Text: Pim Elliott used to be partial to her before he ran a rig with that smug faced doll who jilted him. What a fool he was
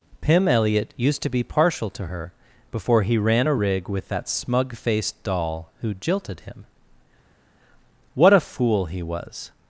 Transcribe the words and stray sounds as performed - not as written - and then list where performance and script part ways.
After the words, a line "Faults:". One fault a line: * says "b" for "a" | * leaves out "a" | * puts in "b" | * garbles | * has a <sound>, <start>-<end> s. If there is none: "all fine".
Pim Elliott used to be partial to her before he ran a rig with that smug faced doll who jilted him. What a fool he was
Faults:
all fine